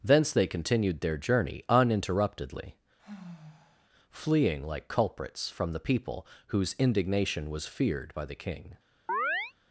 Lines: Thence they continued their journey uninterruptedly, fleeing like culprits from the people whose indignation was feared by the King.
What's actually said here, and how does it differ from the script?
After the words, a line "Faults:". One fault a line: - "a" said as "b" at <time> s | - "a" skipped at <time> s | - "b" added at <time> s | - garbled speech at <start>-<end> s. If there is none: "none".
Thence they continued their journey uninterruptedly, fleeing like culprits from the people whose indignation was feared by the King.
Faults:
none